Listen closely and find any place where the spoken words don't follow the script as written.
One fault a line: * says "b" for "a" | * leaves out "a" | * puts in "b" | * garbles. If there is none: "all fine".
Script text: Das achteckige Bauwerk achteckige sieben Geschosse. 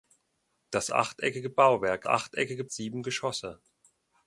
all fine